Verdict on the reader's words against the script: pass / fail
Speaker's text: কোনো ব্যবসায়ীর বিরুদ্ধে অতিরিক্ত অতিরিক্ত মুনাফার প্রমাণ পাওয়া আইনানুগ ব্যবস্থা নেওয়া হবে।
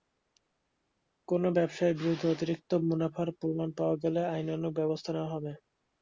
fail